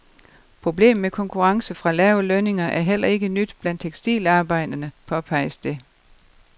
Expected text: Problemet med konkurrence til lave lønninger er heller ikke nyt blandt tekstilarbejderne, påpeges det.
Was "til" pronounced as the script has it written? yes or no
no